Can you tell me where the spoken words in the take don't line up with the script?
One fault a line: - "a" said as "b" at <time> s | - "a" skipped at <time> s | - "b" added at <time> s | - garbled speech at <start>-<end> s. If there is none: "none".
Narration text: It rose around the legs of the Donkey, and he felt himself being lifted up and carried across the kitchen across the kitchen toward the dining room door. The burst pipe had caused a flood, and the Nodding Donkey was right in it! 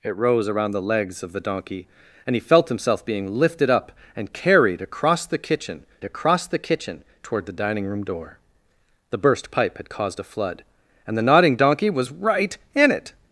none